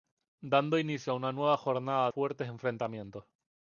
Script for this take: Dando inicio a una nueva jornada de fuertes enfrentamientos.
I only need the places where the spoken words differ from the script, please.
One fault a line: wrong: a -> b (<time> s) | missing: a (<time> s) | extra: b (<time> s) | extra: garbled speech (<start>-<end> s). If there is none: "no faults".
missing: de (2.1 s)